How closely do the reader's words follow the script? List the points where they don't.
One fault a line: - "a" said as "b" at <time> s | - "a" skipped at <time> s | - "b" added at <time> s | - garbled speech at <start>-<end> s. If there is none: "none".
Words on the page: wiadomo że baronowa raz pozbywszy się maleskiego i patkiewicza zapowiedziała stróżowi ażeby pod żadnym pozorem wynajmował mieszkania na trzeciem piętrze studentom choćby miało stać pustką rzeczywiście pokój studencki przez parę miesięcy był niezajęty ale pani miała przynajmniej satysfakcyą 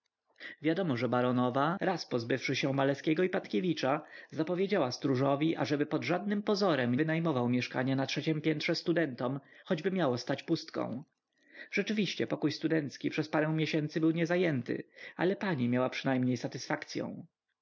none